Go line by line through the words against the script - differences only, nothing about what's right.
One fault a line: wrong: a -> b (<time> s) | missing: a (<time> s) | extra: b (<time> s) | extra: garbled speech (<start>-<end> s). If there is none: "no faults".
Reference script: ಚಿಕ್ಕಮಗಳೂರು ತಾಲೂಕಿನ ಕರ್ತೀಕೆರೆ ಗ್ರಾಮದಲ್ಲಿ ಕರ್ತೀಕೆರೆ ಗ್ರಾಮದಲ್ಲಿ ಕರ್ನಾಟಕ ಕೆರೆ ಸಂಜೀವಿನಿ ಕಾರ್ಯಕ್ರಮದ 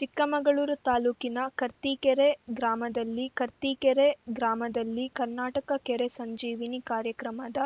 no faults